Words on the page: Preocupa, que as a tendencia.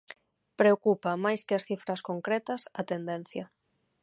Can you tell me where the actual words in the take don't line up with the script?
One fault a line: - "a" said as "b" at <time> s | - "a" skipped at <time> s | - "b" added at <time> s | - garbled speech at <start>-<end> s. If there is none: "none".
- "máis" added at 1.2 s
- "cifras concretas" added at 1.7 s